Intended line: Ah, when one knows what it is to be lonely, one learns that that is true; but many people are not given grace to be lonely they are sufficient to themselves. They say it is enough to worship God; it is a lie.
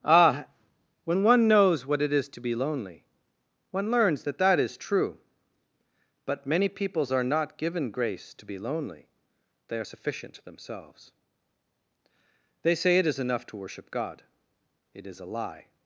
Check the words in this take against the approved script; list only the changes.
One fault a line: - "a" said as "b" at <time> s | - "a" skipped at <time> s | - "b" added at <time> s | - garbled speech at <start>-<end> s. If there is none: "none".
- "people" said as "peoples" at 6.7 s